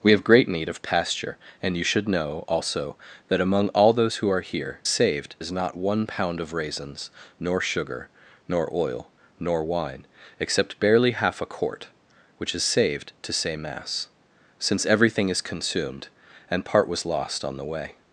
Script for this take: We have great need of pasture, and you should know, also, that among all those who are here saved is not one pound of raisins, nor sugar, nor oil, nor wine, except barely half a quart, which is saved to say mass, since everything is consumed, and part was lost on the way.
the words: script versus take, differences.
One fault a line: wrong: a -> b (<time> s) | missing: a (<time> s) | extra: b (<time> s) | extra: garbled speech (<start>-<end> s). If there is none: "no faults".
no faults